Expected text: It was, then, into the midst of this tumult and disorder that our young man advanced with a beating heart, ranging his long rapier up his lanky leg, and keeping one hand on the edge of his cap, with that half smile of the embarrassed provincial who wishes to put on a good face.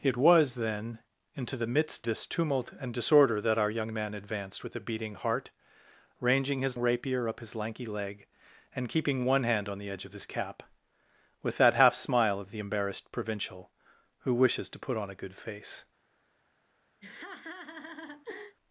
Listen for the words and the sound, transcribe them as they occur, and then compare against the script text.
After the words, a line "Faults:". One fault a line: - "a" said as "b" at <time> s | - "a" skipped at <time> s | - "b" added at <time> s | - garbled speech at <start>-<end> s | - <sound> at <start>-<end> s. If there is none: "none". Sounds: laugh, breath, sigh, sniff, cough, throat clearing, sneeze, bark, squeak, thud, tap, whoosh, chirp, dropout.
It was, then, into the midst this tumult and disorder that our young man advanced with a beating heart, ranging his rapier up his lanky leg, and keeping one hand on the edge of his cap, with that half smile of the embarrassed provincial who wishes to put on a good face.
Faults:
- "of" skipped at 2.1 s
- "long" skipped at 6.8 s
- laugh at 17.0-18.6 s